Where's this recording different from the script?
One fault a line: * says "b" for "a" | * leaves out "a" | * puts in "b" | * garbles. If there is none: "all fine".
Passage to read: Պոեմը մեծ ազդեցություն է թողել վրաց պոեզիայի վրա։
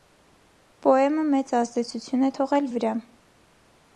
* leaves out "վրաց պոեզիայի"